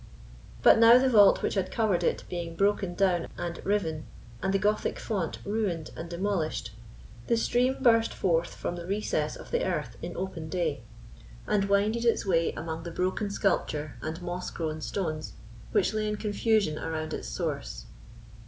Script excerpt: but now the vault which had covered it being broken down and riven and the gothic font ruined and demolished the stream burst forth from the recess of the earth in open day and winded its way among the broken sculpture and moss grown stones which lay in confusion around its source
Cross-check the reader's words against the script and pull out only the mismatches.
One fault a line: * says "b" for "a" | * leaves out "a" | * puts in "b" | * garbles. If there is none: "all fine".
all fine